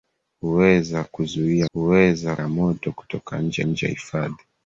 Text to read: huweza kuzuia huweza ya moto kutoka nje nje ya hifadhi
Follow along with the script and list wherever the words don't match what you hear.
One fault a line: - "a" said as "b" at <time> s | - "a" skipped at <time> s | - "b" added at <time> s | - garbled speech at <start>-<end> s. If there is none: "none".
none